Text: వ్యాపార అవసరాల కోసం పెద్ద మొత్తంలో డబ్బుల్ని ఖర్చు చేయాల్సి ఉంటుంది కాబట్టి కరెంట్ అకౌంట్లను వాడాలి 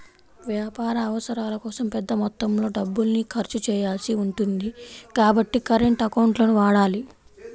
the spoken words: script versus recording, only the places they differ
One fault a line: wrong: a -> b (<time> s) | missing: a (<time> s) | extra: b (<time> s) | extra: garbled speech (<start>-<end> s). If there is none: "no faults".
no faults